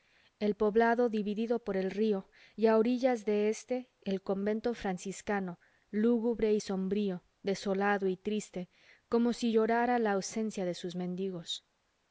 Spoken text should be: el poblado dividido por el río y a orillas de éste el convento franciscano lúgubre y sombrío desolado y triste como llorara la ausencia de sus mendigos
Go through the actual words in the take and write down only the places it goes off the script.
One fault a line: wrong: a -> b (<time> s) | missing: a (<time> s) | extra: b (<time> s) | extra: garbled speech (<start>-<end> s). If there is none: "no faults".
extra: si (9.3 s)